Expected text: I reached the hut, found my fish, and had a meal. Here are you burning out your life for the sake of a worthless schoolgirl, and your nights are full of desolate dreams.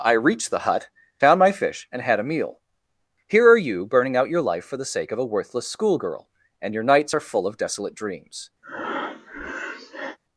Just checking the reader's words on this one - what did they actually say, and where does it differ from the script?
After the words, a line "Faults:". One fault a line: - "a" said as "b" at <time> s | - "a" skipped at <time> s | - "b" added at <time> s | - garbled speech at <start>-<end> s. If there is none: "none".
I reached the hut, found my fish, and had a meal. Here are you burning out your life for the sake of a worthless schoolgirl, and your nights are full of desolate dreams.
Faults:
none